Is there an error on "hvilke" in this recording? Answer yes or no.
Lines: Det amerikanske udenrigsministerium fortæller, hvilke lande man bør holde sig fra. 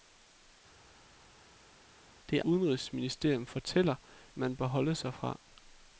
yes